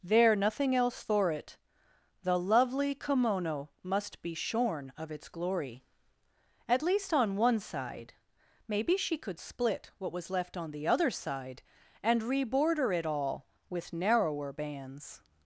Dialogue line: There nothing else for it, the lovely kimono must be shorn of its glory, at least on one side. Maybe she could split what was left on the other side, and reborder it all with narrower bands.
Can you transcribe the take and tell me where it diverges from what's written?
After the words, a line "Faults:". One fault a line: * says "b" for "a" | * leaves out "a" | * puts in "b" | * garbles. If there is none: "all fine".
There nothing else for it, the lovely kimono must be shorn of its glory, at least on one side. Maybe she could split what was left on the other side, and reborder it all with narrower bands.
Faults:
all fine